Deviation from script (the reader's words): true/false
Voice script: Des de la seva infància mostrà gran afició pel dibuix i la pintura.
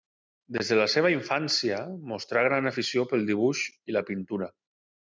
false